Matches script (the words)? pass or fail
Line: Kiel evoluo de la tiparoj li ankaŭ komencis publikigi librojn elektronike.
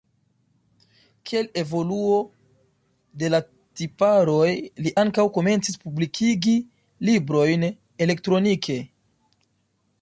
pass